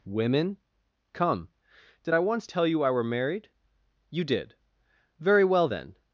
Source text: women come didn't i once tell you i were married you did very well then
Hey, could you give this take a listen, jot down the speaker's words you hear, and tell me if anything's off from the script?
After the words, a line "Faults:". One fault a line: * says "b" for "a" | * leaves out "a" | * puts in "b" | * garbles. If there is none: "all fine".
women come did i once tell you i were married you did very well then
Faults:
* says "did" for "didn't"